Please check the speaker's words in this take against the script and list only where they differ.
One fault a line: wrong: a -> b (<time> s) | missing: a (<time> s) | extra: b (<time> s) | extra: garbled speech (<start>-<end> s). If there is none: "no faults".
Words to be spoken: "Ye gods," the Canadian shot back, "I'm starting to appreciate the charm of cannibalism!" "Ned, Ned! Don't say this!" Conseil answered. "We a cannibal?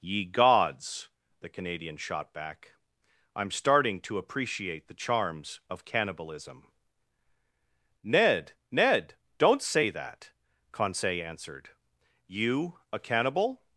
wrong: charm -> charms (4.9 s)
wrong: this -> that (9.9 s)
wrong: We -> You (12.3 s)